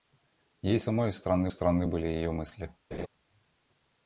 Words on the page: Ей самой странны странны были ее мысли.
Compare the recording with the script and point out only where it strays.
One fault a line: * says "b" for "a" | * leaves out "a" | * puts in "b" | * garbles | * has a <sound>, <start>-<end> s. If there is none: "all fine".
* has a laugh, 2.9-3.1 s